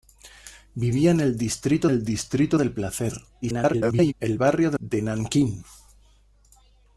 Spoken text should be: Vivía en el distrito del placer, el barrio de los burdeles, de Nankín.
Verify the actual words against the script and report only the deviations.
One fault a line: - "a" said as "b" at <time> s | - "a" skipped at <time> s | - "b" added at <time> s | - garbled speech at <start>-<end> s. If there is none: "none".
- "el distrito" added at 1.9 s
- garbled speech at 3.4-4.1 s
- "los burdeles" skipped at 4.8 s